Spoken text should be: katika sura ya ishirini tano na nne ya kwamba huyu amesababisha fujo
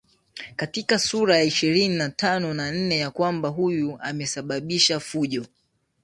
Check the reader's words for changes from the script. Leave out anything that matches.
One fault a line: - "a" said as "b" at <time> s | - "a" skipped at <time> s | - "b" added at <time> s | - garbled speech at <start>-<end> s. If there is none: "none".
- "na" added at 1.9 s